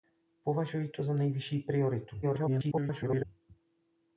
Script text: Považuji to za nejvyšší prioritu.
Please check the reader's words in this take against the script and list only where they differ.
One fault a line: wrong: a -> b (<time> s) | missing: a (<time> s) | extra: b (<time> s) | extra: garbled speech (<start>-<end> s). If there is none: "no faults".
extra: garbled speech (2.2-3.3 s)